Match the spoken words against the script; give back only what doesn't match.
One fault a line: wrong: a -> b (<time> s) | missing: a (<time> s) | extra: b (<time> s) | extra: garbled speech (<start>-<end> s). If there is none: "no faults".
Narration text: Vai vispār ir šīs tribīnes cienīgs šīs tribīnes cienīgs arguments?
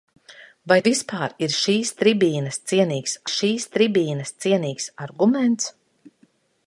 no faults